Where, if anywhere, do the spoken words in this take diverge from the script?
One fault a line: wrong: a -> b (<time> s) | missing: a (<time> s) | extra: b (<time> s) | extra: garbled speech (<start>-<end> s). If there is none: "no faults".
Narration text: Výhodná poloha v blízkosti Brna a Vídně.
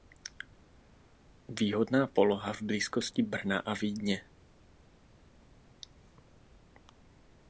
no faults